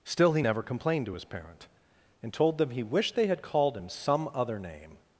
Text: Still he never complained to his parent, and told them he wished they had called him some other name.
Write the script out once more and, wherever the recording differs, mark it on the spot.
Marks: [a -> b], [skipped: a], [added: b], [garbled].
Still he never complained to his parent, and told them he wished they had called him some other name.